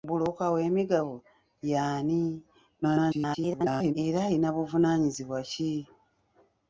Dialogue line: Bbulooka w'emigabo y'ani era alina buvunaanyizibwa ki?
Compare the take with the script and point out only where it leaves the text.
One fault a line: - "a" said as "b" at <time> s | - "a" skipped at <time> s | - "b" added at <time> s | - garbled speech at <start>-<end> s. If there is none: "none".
- garbled speech at 2.8-3.9 s